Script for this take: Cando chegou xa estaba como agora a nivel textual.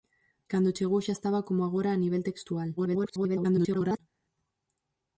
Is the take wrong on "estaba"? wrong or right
right